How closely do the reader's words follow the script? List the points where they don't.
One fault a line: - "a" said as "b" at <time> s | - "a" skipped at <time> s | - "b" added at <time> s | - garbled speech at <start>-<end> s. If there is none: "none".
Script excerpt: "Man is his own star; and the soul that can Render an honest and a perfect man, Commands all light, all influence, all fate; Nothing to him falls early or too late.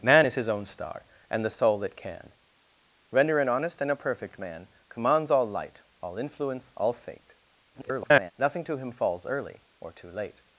- garbled speech at 7.7-8.3 s